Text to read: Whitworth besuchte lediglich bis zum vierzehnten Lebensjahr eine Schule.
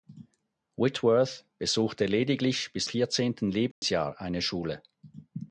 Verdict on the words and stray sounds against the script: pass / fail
fail